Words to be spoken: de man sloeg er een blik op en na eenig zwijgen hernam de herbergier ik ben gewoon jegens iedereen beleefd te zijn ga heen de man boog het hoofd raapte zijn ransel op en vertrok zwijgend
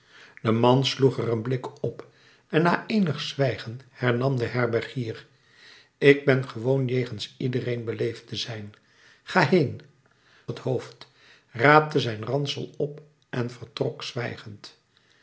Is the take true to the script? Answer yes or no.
no